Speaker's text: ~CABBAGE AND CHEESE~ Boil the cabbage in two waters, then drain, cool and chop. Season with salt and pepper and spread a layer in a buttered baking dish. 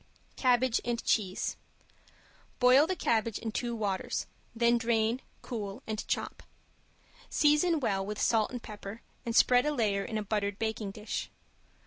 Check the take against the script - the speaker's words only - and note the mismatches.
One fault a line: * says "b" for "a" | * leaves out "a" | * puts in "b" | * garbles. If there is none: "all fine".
* puts in "well"